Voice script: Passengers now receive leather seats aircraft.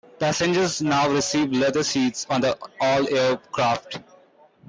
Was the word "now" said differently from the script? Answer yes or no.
no